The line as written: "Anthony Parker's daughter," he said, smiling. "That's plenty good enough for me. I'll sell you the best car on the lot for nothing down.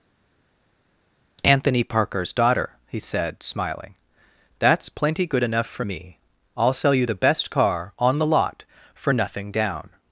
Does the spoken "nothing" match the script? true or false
true